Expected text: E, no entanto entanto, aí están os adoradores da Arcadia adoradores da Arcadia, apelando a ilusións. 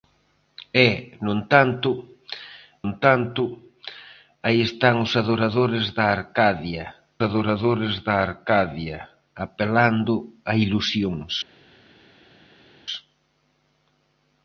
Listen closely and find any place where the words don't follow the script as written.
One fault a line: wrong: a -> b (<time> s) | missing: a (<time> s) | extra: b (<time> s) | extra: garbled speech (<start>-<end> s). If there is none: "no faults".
no faults